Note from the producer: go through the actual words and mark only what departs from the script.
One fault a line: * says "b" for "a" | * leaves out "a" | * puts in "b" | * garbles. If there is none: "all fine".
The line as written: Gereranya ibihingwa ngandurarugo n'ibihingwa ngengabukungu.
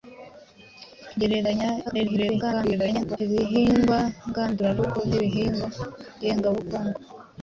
* garbles